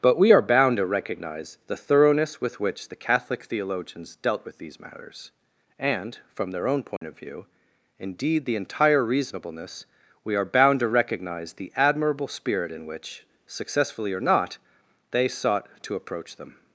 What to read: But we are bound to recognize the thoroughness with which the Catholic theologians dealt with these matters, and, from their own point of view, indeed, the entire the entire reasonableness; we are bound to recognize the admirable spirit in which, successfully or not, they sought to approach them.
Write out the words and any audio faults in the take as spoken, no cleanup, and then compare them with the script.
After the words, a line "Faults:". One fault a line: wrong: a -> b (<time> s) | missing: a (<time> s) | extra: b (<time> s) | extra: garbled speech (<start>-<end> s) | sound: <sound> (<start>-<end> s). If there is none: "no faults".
But we are bound to recognize the thoroughness with which the Catholic theologians dealt with these matters, and, from their own point of view, indeed, the entire reasonableness; we are bound to recognize the admirable spirit in which, successfully or not, they sought to approach them.
Faults:
sound: dropout (7.0-7.0 s)
missing: the entire (9.0 s)